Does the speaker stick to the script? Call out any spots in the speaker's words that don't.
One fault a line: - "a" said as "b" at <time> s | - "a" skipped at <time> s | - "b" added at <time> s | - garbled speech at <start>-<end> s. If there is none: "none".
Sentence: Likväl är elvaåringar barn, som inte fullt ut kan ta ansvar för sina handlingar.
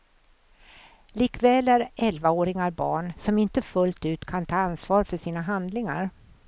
none